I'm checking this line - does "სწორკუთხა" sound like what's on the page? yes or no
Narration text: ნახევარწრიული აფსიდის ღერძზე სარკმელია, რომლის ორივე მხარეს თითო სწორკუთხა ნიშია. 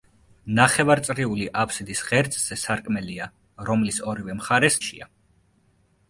no